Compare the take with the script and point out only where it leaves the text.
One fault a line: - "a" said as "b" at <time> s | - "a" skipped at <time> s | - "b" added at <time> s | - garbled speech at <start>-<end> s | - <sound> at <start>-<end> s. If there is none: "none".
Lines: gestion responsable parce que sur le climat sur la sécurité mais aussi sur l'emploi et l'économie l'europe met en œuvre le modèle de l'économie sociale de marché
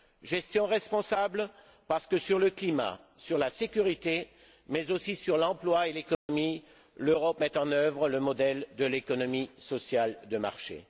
- dropout at 6.1-6.3 s